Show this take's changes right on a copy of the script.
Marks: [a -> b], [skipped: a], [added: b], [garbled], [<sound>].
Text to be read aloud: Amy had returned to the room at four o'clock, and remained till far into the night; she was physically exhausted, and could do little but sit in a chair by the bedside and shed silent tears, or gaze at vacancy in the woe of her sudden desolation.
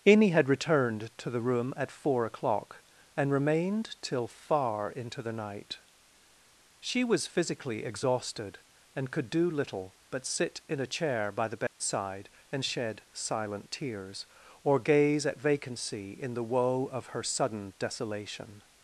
Amy had returned to the room at four o'clock, and remained till far into the night; she was physically exhausted, and could do little but sit in a chair by the bedside [dropout] and shed silent tears, or gaze at vacancy in the woe of her sudden desolation.